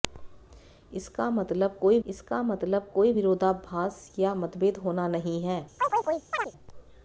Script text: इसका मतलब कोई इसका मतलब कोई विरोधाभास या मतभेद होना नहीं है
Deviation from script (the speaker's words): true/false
false